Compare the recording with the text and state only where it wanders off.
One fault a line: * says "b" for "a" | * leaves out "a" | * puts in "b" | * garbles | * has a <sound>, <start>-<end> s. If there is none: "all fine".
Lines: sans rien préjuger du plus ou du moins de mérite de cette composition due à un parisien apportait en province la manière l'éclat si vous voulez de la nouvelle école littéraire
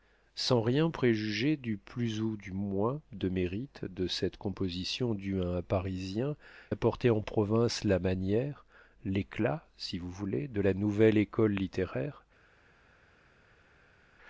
all fine